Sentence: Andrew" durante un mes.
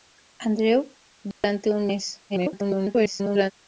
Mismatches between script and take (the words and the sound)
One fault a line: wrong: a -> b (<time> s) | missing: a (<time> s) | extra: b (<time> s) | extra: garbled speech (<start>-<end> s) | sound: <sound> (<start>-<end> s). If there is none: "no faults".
sound: dropout (1.3-1.4 s)
extra: garbled speech (2.3-3.5 s)